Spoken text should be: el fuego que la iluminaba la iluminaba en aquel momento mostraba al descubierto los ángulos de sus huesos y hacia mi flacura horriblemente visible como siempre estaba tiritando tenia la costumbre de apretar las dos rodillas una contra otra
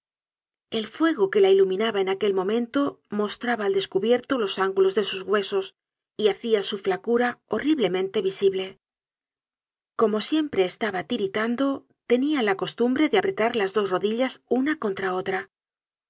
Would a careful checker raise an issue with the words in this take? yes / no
yes